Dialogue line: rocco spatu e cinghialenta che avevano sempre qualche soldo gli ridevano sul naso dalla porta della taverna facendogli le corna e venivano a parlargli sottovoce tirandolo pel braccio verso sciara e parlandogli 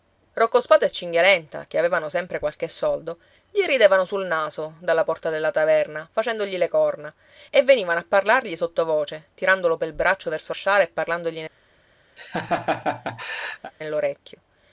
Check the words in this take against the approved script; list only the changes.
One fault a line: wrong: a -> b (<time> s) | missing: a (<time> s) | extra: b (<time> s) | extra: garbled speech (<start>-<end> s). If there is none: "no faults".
no faults